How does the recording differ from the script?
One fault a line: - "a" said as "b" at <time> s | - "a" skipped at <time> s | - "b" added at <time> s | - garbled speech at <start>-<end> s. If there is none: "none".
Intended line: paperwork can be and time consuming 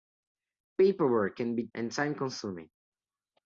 none